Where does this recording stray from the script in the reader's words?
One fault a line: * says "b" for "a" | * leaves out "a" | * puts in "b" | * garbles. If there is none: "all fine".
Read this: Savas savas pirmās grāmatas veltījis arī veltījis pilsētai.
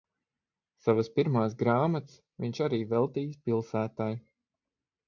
* leaves out "savas"
* says "viņš" for "veltījis"